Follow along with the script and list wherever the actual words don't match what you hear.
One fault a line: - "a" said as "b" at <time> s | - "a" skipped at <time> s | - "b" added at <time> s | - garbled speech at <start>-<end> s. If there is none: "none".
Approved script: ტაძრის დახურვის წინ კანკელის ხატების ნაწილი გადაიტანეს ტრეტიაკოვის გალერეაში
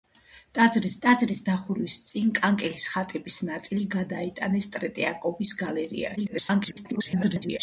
- "ტაძრის" added at 1.0 s
- garbled speech at 6.2-7.6 s